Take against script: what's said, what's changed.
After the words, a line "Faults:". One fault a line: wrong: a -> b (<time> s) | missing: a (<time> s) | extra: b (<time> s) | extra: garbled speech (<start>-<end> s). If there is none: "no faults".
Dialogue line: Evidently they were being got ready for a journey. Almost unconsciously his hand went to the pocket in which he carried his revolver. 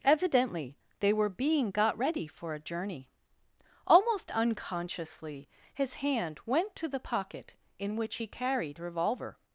Evidently they were being got ready for a journey. Almost unconsciously his hand went to the pocket in which he carried revolver.
Faults:
missing: his (8.8 s)